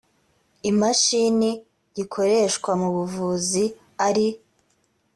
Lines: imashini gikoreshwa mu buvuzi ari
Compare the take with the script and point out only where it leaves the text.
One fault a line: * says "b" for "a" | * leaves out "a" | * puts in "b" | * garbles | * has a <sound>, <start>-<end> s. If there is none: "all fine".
all fine